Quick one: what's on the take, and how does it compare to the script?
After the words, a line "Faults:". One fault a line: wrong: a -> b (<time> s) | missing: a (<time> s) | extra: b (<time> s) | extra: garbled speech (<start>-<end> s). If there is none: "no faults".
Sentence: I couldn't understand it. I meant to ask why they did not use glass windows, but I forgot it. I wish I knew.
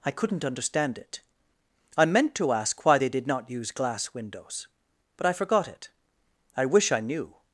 I couldn't understand it. I meant to ask why they did not use glass windows, but I forgot it. I wish I knew.
Faults:
no faults